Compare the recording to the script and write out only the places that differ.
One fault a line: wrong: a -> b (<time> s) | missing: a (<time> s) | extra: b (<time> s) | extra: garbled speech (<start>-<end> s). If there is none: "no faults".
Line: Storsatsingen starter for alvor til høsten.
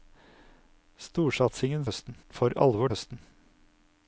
wrong: starter -> høsten (1.8 s)
missing: til (2.9 s)